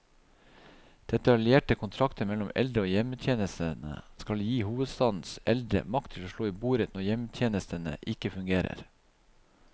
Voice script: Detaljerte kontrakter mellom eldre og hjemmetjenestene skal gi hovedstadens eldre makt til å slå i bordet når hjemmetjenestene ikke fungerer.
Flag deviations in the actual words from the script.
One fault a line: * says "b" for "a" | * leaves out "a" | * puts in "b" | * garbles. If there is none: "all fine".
all fine